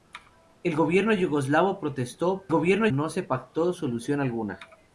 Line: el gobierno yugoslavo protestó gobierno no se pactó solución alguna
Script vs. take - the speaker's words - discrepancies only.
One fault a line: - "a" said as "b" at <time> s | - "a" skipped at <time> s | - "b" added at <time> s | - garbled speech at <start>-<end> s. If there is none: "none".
none